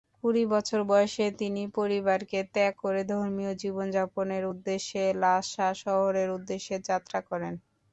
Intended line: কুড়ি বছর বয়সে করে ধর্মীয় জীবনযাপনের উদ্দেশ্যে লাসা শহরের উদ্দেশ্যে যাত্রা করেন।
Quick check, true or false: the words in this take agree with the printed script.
false